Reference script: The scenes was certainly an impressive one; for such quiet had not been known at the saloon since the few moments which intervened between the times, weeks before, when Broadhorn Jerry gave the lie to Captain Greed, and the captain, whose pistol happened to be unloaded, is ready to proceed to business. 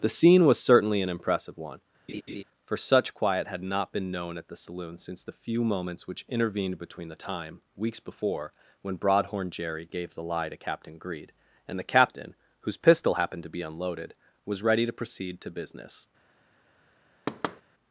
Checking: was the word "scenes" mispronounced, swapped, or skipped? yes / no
yes